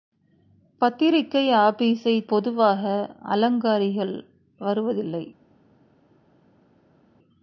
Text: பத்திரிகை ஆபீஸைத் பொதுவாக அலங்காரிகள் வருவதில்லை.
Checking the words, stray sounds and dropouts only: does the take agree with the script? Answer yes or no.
yes